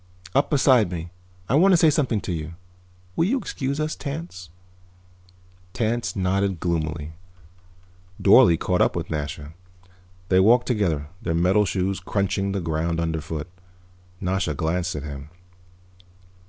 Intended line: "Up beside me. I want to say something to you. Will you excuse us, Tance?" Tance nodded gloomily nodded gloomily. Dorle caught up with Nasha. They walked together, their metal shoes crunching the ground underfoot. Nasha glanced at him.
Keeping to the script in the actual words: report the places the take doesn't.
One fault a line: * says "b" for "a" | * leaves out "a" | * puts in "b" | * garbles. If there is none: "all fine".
* leaves out "nodded gloomily"